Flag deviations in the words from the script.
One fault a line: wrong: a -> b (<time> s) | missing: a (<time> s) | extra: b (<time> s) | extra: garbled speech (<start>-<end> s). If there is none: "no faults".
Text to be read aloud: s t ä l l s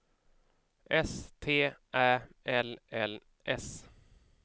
no faults